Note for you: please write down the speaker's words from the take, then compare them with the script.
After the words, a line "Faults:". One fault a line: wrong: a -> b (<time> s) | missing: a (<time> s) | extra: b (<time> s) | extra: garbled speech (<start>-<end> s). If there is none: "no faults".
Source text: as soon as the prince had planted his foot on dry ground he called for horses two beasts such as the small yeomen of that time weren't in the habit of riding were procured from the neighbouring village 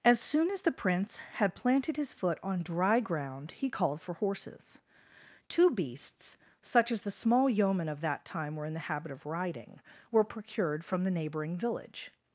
as soon as the prince had planted his foot on dry ground he called for horses two beasts such as the small yeomen of that time were in the habit of riding were procured from the neighbouring village
Faults:
wrong: weren't -> were (8.5 s)